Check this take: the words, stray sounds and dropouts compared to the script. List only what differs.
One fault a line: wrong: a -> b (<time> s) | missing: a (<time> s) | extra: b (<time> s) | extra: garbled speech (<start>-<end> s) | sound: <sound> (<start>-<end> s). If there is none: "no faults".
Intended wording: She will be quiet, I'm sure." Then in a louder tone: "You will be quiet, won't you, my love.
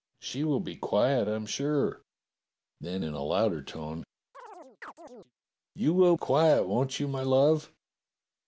sound: chirp (4.3-5.3 s)
missing: be (6.2 s)